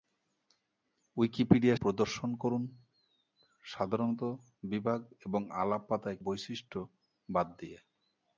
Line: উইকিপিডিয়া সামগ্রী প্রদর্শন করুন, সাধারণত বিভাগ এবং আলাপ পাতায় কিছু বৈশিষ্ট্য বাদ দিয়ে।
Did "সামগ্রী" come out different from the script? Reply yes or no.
yes